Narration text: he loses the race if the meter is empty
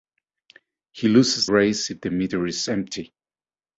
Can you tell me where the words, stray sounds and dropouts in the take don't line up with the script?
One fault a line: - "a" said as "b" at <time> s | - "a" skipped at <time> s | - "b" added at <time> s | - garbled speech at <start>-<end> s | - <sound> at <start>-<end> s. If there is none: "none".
- "the" skipped at 1.5 s